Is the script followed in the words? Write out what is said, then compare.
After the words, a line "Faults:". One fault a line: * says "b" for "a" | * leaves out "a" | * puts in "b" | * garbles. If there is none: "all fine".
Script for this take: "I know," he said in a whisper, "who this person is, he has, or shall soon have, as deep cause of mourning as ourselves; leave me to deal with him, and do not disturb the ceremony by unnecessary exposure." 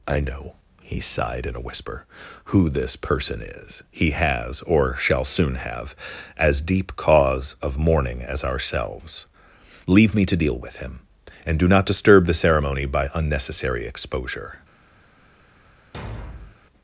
"I know," he sighed in a whisper, "who this person is, he has, or shall soon have, as deep cause of mourning as ourselves; leave me to deal with him, and do not disturb the ceremony by unnecessary exposure."
Faults:
* says "sighed" for "said"